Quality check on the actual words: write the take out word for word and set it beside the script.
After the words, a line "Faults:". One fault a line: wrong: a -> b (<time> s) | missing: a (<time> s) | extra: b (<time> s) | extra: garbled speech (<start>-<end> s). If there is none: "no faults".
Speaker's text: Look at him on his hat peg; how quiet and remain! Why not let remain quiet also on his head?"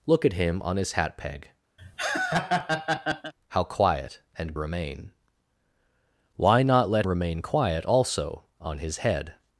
Look at him on his hat peg; how quiet and remain! Why not let remain quiet also on his head?"
Faults:
no faults